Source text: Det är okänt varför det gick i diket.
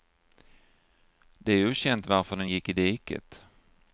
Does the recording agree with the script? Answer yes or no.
no